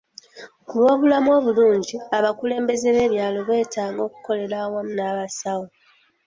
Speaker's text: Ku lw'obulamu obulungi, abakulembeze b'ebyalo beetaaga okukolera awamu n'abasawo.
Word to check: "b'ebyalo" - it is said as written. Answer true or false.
true